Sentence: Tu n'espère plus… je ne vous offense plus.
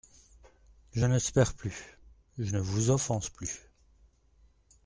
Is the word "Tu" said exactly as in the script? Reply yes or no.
no